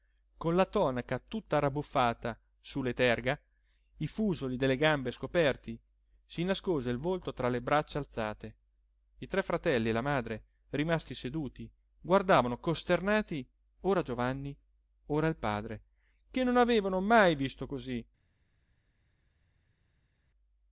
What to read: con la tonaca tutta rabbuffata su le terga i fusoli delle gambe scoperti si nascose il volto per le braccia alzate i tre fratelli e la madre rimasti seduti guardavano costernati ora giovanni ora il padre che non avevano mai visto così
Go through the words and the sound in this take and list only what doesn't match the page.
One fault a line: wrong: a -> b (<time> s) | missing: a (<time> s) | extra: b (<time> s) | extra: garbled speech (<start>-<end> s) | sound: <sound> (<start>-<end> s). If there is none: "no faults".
wrong: per -> tra (7.3 s)